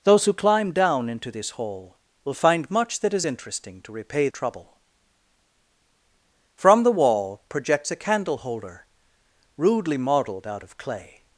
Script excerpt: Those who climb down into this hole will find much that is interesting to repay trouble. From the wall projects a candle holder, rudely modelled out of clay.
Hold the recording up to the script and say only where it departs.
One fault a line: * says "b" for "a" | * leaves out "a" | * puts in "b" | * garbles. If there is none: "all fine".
all fine